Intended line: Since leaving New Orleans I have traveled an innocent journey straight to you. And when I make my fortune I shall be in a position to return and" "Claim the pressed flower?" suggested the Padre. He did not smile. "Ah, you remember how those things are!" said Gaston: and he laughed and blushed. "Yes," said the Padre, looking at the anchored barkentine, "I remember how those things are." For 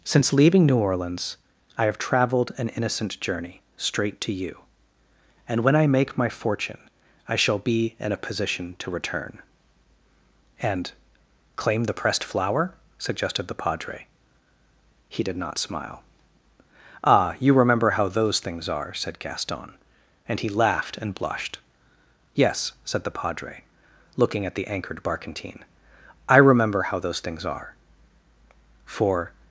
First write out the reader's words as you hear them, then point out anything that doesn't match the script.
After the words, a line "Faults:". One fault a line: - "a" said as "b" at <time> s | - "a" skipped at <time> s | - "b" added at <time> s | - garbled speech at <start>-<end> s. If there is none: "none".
Since leaving New Orleans I have traveled an innocent journey straight to you. And when I make my fortune I shall be in a position to return and" "Claim the pressed flower?" suggested the Padre. He did not smile. "Ah, you remember how those things are!" said Gaston: and he laughed and blushed. "Yes," said the Padre, looking at the anchored barkentine, "I remember how those things are." For
Faults:
none